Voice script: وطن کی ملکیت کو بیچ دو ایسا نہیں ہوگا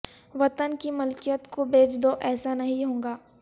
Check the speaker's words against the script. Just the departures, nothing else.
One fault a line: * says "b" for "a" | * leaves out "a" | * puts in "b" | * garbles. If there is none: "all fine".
all fine